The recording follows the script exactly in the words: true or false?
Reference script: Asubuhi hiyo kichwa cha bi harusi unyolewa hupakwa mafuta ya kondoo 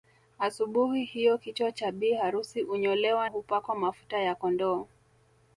true